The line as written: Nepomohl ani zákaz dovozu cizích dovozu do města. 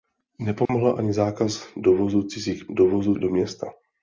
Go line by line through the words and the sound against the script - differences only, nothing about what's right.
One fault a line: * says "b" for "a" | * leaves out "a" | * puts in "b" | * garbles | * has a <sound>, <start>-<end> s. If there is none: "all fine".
* has a dropout, 0.7-0.7 s